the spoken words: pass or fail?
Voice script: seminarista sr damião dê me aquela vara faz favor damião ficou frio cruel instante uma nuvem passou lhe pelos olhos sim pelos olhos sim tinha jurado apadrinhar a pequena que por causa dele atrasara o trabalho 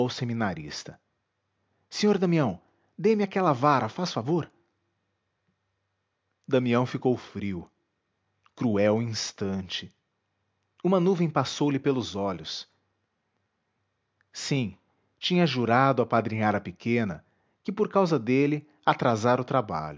fail